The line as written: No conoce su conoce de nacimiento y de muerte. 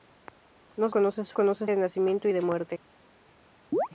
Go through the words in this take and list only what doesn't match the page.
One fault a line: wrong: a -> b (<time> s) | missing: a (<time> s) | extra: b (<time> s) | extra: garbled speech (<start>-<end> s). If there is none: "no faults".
no faults